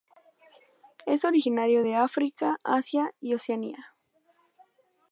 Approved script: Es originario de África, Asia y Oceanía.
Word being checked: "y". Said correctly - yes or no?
yes